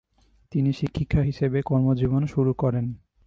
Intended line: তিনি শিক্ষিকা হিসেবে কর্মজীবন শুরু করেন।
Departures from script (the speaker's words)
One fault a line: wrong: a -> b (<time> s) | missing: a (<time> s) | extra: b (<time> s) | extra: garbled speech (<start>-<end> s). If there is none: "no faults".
no faults